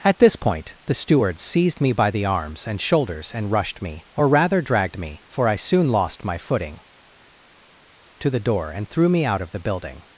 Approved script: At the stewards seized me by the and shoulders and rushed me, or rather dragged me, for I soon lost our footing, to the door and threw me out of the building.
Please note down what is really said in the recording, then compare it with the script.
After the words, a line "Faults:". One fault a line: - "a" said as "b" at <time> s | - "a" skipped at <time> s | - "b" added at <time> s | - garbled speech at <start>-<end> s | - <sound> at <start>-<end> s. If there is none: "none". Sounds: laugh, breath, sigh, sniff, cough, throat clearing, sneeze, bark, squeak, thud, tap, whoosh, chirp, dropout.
At this point the stewards seized me by the arms and shoulders and rushed me, or rather dragged me, for I soon lost my footing, to the door and threw me out of the building.
Faults:
- "this point" added at 0.2 s
- "arms" added at 2.2 s
- "our" said as "my" at 6.2 s